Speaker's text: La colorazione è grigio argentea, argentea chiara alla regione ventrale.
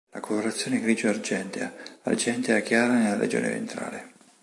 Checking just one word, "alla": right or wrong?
wrong